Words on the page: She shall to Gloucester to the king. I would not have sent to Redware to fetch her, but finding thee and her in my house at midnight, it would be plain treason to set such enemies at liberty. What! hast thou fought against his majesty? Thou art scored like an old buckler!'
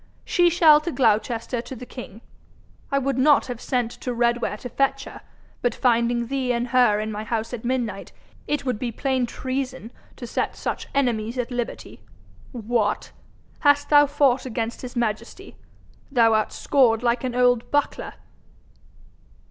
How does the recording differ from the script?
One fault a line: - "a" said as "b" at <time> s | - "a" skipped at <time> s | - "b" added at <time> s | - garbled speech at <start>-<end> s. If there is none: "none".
none